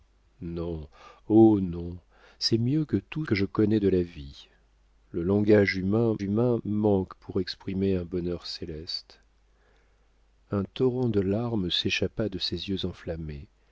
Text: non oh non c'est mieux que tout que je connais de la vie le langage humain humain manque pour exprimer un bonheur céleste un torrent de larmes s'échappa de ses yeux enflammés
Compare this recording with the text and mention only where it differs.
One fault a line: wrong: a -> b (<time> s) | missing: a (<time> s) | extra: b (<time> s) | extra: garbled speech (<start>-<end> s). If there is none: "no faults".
no faults